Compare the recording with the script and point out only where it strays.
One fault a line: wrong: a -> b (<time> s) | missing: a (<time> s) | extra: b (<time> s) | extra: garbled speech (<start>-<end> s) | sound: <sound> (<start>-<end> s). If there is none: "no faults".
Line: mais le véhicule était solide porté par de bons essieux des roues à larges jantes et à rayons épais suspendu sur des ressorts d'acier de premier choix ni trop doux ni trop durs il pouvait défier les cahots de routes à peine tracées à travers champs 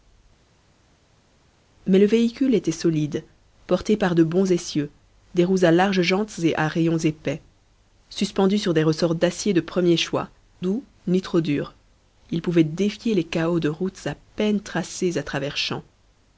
missing: ni trop (10.3 s)